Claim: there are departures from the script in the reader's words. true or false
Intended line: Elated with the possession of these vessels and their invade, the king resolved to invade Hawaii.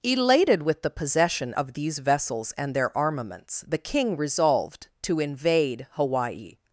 true